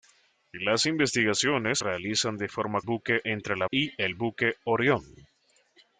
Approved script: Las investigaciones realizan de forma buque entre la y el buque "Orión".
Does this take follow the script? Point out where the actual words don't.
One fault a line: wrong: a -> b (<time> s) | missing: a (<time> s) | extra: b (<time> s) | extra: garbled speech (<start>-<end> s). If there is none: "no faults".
no faults